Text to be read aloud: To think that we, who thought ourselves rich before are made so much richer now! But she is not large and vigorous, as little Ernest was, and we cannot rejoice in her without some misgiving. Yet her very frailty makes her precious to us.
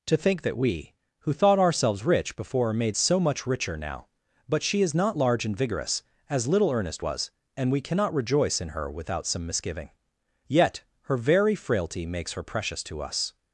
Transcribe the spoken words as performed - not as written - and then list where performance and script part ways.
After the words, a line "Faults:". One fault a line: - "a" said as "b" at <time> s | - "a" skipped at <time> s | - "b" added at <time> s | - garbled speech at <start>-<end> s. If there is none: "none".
To think that we, who thought ourselves rich before are made so much richer now! But she is not large and vigorous, as little Ernest was, and we cannot rejoice in her without some misgiving. Yet her very frailty makes her precious to us.
Faults:
none